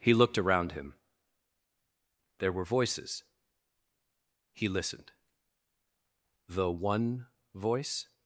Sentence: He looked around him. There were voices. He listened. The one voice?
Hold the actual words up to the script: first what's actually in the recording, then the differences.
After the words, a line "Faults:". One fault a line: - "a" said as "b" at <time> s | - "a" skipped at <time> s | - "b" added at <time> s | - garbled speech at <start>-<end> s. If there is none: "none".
He looked around him. There were voices. He listened. The one voice?
Faults:
none